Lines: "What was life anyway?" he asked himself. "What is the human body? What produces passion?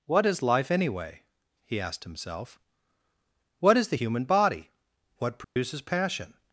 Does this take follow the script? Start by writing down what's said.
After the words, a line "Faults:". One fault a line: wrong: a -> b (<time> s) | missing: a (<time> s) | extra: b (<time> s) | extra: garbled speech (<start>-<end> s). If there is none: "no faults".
"What is life anyway?" he asked himself. "What is the human body? What produces passion?
Faults:
wrong: was -> is (0.2 s)